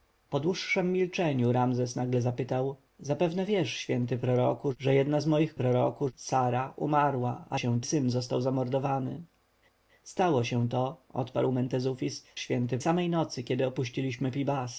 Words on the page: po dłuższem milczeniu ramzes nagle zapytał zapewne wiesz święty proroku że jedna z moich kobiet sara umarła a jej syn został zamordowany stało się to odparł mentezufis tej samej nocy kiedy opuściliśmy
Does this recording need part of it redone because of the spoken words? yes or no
yes